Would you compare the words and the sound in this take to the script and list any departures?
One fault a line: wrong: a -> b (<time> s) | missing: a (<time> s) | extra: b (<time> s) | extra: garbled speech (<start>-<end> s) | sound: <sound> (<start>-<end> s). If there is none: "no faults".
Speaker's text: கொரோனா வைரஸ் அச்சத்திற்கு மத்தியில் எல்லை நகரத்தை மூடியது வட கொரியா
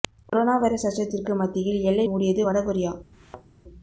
missing: நகரத்தை (2.1 s)
sound: thud (3.1-3.5 s)